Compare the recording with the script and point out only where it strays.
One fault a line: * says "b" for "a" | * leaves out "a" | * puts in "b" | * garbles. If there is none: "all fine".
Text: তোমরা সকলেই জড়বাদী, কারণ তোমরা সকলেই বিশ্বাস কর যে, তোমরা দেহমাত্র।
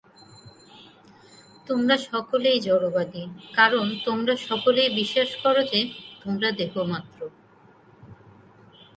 all fine